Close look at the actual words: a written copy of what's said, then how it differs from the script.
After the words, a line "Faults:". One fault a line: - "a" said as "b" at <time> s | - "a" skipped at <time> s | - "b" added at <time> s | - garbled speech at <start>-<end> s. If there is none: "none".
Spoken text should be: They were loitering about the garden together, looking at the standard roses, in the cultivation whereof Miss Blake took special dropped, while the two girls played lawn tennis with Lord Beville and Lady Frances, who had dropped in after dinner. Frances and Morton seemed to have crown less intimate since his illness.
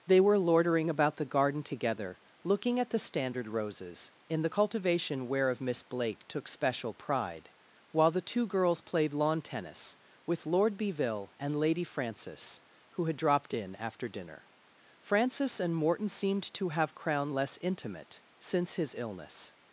They were loitering about the garden together, looking at the standard roses, in the cultivation whereof Miss Blake took special pride, while the two girls played lawn tennis with Lord Beville and Lady Frances, who had dropped in after dinner. Frances and Morton seemed to have crown less intimate since his illness.
Faults:
- "dropped" said as "pride" at 6.9 s